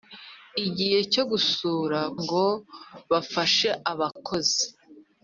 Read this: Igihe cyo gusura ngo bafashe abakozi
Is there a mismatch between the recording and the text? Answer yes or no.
no